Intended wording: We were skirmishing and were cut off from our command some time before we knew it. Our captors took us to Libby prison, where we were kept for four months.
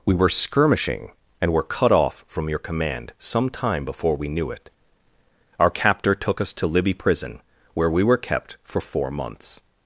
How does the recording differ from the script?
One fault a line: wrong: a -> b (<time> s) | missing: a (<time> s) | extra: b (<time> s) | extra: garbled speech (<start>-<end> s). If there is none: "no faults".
wrong: our -> your (2.5 s)
wrong: captors -> captor (5.7 s)